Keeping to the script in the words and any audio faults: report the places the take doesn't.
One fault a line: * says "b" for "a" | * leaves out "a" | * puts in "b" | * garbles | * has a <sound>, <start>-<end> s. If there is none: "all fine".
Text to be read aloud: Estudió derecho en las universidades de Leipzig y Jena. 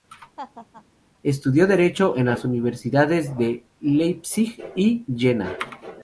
* has a laugh, 0.4-0.8 s